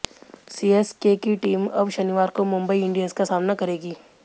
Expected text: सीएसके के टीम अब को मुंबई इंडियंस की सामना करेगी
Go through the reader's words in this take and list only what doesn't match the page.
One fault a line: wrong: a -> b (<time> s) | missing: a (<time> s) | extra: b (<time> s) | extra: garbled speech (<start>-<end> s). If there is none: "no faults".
wrong: के -> की (1.2 s)
extra: शनिवार (1.9 s)
wrong: की -> का (3.1 s)